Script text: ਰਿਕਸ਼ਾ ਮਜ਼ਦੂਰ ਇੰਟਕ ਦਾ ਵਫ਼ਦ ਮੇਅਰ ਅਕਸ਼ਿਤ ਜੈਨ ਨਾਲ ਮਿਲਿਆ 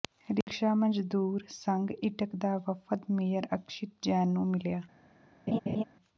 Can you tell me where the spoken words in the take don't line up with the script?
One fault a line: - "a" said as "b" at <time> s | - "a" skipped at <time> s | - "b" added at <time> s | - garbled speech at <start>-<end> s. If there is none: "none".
- "ਸੰਘ" added at 1.5 s
- "ਨਾਲ" said as "ਨੂੰ" at 4.3 s